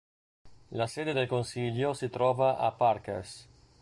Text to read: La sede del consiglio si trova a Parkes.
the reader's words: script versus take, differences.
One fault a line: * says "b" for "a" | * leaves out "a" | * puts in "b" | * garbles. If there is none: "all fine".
all fine